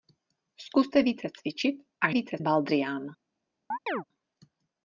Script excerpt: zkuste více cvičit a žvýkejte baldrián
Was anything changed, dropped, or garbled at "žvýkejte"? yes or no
yes